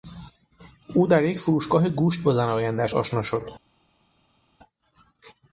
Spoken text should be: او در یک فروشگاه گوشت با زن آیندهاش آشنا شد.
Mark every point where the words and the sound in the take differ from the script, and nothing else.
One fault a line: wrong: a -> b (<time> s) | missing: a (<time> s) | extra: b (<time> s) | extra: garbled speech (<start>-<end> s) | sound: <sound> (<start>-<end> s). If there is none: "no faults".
no faults